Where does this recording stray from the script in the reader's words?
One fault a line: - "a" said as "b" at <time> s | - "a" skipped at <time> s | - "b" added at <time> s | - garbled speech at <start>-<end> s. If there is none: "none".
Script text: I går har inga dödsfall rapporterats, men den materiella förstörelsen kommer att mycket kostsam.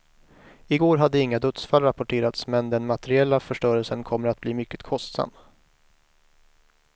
- "har" said as "hade" at 1.0 s
- "bli" added at 4.4 s